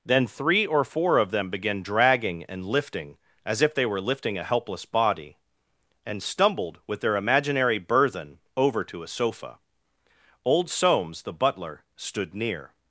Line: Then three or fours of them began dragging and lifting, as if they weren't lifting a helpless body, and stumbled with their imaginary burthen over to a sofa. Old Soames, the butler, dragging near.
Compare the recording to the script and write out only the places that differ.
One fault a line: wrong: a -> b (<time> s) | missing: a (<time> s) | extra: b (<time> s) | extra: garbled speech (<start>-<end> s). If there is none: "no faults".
wrong: fours -> four (0.8 s)
wrong: weren't -> were (3.9 s)
wrong: dragging -> stood (11.9 s)